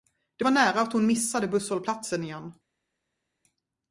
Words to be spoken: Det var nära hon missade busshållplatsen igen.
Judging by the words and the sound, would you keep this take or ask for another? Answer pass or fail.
fail